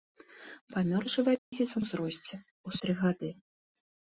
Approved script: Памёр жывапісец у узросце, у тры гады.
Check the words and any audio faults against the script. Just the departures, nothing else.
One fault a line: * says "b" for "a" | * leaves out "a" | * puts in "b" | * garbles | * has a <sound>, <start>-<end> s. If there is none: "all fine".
* has a dropout, 1.4-1.5 s